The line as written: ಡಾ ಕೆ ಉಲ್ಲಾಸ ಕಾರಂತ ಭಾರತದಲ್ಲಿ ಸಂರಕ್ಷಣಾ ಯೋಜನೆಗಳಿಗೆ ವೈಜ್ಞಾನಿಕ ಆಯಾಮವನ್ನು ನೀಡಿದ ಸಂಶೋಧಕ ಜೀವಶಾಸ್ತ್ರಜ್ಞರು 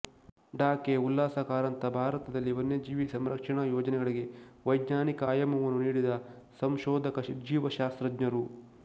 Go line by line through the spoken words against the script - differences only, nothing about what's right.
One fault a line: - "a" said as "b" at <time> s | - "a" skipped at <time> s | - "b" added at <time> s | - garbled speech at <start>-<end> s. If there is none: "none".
- "ವನ್ಯಜೀವಿ" added at 2.5 s